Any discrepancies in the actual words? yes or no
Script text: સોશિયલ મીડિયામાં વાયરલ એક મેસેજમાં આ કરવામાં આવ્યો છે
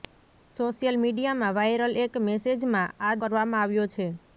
no